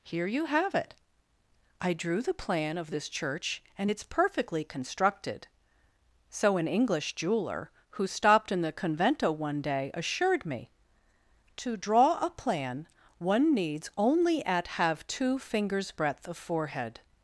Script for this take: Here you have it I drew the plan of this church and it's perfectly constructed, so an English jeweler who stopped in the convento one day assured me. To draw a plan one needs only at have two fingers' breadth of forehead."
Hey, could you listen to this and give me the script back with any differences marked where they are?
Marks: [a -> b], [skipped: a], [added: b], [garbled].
Here you have it I drew the plan of this church and it's perfectly constructed, so an English jeweler who stopped in the convento one day assured me. To draw a plan one needs only at have two fingers' breadth of forehead."